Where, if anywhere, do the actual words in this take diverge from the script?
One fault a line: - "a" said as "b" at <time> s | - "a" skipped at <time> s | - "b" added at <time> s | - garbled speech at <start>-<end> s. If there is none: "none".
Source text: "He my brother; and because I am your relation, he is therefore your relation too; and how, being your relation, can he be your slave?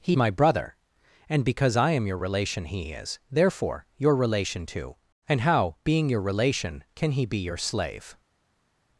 none